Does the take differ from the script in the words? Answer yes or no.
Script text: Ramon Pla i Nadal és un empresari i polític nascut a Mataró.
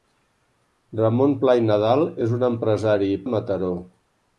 yes